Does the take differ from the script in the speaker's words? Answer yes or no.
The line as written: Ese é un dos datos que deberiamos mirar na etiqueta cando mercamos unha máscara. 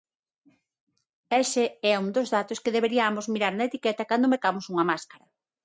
no